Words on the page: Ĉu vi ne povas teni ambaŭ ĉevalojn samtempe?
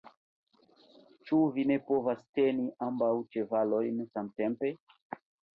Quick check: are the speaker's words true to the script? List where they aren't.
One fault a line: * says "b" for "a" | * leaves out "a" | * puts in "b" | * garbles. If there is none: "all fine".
all fine